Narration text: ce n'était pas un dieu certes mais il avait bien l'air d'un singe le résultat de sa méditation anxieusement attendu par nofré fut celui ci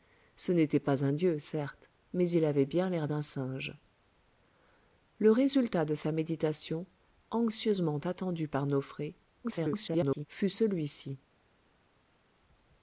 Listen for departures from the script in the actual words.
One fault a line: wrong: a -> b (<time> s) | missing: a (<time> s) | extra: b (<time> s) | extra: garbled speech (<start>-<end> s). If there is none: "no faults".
extra: garbled speech (9.4-10.3 s)